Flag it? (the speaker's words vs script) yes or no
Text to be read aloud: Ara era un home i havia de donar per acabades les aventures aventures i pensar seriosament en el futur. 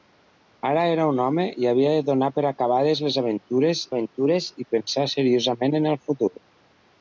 no